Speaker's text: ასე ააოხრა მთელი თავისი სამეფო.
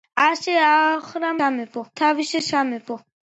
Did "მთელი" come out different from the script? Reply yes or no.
yes